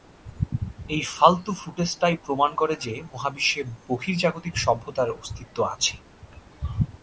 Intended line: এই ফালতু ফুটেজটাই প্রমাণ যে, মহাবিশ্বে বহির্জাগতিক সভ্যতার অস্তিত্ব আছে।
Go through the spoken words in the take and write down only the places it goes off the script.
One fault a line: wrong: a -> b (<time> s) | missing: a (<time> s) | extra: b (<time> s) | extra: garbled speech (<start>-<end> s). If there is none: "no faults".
extra: করে (2.5 s)